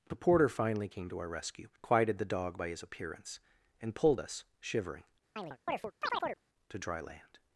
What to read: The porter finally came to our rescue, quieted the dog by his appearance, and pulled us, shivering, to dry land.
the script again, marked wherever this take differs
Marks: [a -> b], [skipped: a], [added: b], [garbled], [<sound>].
The porter finally came to our rescue, quieted the dog by his appearance, and pulled us, shivering, [chirp] to dry land.